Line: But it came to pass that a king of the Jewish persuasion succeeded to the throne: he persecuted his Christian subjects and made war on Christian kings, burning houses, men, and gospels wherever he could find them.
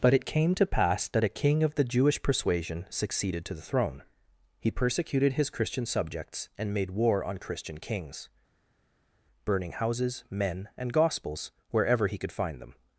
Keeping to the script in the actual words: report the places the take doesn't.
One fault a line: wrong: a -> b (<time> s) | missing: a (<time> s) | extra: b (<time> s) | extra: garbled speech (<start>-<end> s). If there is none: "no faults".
no faults